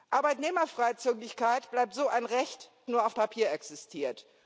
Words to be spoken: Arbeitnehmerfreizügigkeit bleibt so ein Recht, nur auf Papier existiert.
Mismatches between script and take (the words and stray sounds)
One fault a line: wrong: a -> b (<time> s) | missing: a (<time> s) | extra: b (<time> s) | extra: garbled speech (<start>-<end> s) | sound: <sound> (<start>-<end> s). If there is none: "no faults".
no faults